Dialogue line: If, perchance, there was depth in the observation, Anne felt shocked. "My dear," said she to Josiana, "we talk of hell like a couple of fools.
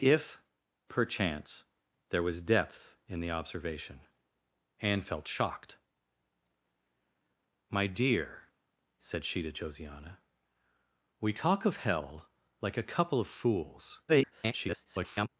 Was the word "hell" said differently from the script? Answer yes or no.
no